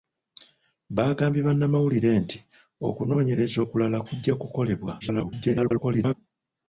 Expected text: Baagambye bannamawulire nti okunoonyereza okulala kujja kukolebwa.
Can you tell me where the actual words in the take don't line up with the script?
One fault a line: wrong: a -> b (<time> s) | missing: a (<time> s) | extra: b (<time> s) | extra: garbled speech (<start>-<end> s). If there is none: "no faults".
extra: garbled speech (5.0-6.1 s)